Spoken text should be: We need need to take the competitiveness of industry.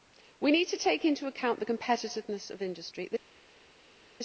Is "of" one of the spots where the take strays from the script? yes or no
no